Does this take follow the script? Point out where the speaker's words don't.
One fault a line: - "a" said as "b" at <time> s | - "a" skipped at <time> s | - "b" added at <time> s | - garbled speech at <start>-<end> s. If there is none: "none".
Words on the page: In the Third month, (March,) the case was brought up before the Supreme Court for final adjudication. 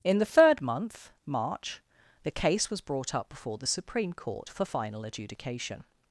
none